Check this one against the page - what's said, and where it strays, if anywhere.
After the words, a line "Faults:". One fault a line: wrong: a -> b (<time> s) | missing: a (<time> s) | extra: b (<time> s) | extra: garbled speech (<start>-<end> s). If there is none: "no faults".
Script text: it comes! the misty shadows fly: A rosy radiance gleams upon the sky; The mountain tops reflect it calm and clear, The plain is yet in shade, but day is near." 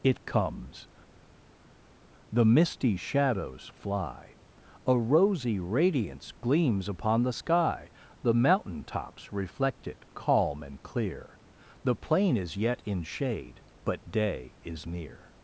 it comes! the misty shadows fly: A rosy radiance gleams upon the sky; The mountain tops reflect it calm and clear, The plain is yet in shade, but day is near."
Faults:
no faults